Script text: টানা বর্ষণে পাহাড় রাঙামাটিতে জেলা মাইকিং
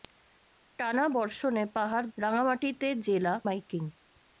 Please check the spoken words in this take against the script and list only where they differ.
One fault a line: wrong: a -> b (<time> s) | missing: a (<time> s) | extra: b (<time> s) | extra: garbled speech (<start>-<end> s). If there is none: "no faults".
no faults